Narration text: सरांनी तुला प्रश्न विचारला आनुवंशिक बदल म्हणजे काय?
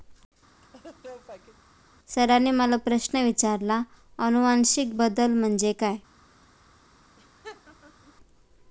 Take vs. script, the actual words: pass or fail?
fail